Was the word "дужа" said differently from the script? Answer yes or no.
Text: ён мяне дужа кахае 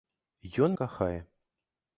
yes